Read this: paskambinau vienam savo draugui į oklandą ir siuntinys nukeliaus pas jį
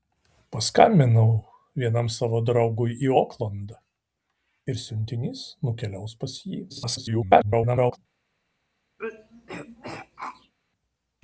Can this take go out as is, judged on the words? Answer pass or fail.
fail